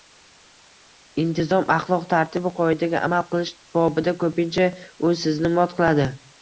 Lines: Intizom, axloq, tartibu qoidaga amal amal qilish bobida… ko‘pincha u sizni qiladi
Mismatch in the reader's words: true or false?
true